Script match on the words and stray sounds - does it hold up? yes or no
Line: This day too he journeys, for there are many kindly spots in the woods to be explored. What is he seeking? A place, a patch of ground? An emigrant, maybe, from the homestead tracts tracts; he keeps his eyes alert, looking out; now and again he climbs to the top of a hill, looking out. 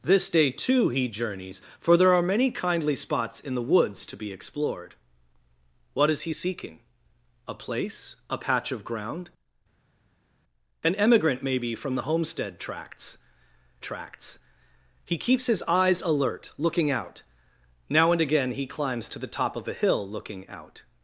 yes